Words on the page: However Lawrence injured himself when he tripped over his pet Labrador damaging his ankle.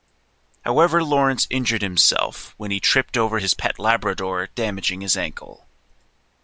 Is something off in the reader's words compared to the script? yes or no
no